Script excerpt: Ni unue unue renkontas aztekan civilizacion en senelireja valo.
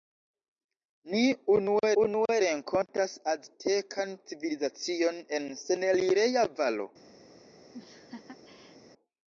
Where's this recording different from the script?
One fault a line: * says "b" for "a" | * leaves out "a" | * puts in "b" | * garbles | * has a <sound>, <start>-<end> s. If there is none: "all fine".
* has a laugh, 7.7-8.8 s